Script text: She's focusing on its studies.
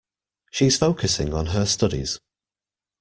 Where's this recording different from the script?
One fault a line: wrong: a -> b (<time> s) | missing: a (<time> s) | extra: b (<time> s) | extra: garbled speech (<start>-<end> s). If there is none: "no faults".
wrong: its -> her (1.5 s)